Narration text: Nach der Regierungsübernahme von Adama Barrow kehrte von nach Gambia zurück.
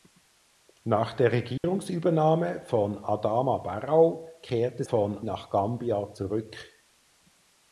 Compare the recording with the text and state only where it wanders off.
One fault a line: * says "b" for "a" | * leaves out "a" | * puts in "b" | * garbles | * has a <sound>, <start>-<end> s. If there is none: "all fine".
* has a dropout, 1.6-1.6 s